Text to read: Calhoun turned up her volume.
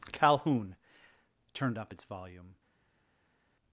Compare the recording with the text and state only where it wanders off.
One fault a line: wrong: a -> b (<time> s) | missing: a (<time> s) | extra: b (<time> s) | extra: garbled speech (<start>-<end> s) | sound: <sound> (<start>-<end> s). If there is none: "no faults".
wrong: her -> its (1.9 s)